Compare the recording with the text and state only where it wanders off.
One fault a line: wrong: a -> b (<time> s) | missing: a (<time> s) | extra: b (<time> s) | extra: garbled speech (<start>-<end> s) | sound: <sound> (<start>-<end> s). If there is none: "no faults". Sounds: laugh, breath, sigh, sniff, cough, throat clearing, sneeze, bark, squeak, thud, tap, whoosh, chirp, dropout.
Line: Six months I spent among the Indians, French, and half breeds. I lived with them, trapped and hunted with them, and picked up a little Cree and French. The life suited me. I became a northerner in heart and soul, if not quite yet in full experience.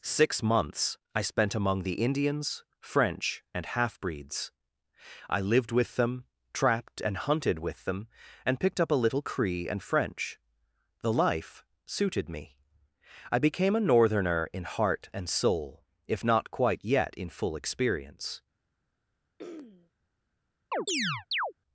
sound: throat clearing (19.4-19.9 s)
sound: chirp (20.7-21.5 s)